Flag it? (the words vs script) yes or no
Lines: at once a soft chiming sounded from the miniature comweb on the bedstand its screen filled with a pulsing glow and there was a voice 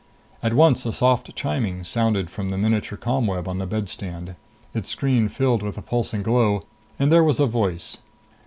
no